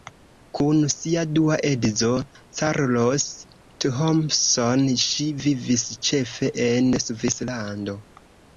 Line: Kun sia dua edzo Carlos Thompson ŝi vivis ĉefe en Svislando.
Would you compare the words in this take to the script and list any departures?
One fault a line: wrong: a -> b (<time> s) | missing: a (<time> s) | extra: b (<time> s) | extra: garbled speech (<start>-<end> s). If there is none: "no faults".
no faults